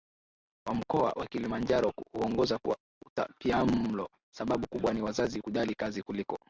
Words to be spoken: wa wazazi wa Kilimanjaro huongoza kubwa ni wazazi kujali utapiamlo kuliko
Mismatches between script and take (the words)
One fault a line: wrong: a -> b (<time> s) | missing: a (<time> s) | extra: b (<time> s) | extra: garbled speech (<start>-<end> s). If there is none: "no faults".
wrong: wazazi -> mkoa (0.8 s)
extra: kwa utapiamlo Sababu (2.6 s)
wrong: utapiamlo -> kazi (5.7 s)